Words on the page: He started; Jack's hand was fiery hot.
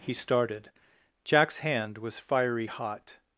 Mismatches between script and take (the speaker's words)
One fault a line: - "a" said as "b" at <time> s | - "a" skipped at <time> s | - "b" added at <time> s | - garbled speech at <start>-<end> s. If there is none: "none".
none